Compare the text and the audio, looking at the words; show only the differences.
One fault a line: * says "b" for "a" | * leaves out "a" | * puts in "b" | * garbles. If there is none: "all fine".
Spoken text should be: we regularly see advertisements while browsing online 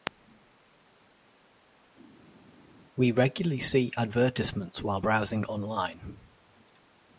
all fine